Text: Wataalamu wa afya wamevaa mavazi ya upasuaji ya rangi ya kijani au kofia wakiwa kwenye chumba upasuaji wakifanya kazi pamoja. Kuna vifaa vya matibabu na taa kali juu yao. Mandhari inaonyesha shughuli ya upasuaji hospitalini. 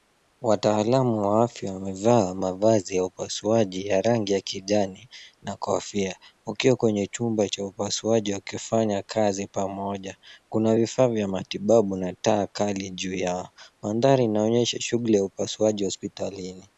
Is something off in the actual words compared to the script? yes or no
yes